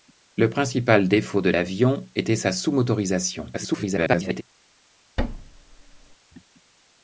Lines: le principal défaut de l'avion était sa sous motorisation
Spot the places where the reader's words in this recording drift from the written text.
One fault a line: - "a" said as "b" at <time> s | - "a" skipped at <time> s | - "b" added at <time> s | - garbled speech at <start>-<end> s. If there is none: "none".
- garbled speech at 3.5-4.4 s